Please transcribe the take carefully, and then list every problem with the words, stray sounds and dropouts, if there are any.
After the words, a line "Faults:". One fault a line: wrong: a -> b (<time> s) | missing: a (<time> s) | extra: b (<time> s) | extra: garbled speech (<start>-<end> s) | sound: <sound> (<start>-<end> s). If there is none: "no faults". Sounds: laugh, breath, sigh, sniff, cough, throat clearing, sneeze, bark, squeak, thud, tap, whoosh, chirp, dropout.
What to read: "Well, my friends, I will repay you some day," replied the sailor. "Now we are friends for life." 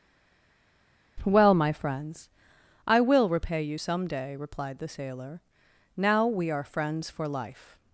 "Well, my friends, I will repay you some day," replied the sailor. "Now we are friends for life."
Faults:
no faults